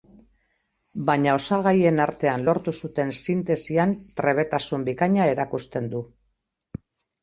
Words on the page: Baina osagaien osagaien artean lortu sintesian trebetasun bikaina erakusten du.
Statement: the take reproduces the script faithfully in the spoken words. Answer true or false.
false